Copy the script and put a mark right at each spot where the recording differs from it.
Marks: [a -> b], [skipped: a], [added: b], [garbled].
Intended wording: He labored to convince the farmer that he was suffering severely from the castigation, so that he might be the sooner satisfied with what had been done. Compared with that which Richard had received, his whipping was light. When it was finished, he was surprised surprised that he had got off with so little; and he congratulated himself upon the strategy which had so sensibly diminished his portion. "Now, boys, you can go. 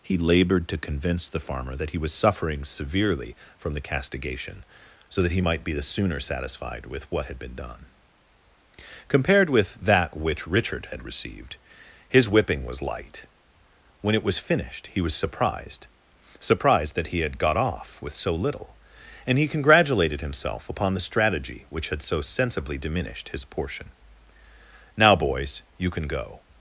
He labored to convince the farmer that he was suffering severely from the castigation, so that he might be the sooner satisfied with what had been done. Compared with that which Richard had received, his whipping was light. When it was finished, he was surprised surprised that he had got off with so little; and he congratulated himself upon the strategy which had so sensibly diminished his portion. "Now, boys, you can go.